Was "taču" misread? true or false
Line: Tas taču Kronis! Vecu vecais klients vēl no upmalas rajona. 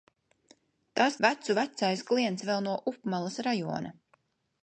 true